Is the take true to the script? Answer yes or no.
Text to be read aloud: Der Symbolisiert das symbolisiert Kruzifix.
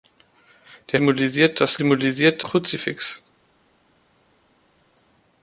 yes